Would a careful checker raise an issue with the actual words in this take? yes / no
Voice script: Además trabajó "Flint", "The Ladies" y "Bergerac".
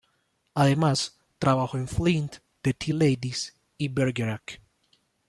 yes